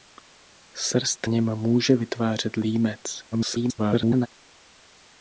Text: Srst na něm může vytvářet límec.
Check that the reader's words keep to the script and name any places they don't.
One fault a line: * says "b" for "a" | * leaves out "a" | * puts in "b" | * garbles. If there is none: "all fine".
* leaves out "na"
* garbles